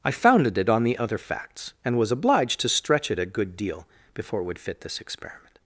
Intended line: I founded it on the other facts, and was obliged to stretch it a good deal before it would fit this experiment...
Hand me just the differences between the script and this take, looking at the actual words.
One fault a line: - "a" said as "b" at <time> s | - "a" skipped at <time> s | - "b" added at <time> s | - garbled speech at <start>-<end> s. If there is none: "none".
none